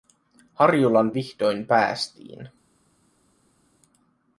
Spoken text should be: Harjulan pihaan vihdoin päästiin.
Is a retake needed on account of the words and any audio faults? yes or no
yes